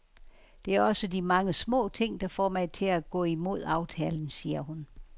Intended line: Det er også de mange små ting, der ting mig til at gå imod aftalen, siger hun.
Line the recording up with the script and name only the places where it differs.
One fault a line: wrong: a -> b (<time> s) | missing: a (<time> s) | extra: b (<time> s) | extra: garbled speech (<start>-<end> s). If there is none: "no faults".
wrong: ting -> får (2.3 s)